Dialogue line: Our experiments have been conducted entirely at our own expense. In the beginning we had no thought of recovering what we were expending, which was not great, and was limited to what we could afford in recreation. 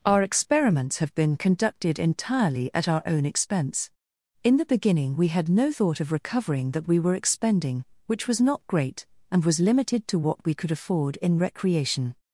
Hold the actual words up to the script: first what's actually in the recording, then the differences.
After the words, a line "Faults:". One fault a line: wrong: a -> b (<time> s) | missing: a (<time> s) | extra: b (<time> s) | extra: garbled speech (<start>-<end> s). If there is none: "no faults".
Our experiments have been conducted entirely at our own expense. In the beginning we had no thought of recovering that we were expending, which was not great, and was limited to what we could afford in recreation.
Faults:
wrong: what -> that (6.7 s)